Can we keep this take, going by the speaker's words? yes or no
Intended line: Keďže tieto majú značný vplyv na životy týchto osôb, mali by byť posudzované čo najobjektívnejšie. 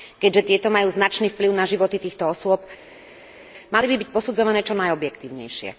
yes